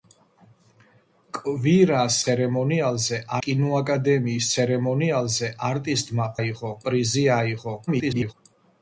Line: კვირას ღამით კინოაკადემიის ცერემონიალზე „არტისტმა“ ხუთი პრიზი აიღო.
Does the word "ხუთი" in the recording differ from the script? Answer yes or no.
yes